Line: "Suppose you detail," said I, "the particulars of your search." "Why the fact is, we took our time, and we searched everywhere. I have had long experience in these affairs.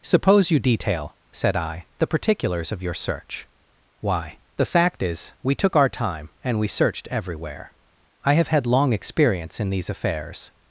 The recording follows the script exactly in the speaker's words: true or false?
true